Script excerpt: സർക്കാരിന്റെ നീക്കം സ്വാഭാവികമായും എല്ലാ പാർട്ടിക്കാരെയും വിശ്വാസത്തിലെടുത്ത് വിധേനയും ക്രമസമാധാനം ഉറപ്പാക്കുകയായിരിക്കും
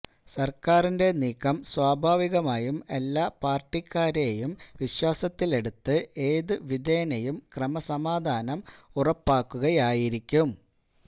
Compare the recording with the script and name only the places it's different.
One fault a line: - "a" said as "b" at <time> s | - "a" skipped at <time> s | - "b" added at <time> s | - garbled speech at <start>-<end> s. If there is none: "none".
- "ഏതു" added at 6.3 s